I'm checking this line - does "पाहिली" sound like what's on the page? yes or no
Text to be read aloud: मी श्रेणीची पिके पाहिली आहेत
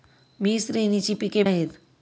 no